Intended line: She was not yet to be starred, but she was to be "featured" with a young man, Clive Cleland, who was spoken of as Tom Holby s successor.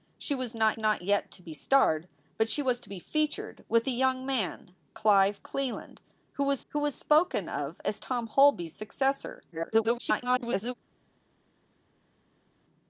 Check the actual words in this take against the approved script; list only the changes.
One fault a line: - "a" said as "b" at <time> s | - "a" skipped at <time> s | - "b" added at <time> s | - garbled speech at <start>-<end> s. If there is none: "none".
- "not" added at 0.8 s
- "who was" added at 6.7 s
- garbled speech at 9.5-10.7 s